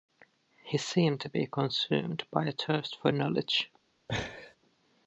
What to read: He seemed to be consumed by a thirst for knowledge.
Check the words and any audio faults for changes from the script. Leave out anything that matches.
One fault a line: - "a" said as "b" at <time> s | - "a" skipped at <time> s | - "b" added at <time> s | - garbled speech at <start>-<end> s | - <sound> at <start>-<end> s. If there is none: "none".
- laugh at 4.1-4.6 s